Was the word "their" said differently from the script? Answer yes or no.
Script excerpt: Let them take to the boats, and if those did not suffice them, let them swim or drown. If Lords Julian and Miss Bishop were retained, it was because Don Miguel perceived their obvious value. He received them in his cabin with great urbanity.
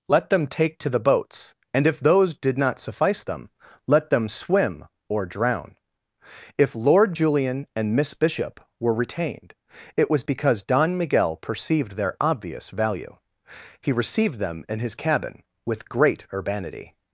no